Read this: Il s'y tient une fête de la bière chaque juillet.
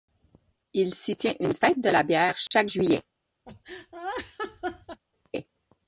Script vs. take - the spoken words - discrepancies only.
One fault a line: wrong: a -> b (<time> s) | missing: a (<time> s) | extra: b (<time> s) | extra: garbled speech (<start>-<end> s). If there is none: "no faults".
no faults